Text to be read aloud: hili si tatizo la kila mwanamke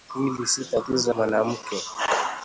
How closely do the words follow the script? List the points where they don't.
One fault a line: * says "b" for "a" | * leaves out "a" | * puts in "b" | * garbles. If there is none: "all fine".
* leaves out "la kila"